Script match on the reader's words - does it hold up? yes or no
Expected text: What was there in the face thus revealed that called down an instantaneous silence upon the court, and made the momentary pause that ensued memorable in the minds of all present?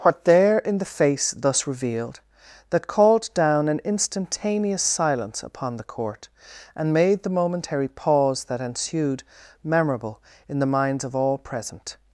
no